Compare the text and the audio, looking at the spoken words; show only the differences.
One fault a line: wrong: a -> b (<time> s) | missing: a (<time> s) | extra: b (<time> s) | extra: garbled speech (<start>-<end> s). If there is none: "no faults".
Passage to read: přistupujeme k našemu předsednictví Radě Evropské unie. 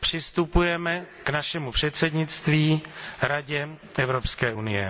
no faults